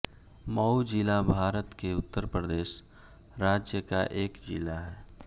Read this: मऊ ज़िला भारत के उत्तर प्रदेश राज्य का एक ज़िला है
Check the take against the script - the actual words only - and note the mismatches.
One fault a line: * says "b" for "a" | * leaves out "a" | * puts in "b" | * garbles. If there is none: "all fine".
all fine